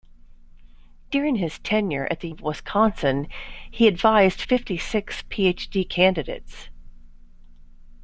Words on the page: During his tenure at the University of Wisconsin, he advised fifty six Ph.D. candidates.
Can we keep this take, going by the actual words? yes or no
no